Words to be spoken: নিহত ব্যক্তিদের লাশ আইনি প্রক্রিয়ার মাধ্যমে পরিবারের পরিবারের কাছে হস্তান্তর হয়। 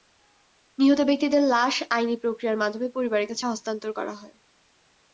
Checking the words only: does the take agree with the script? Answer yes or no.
no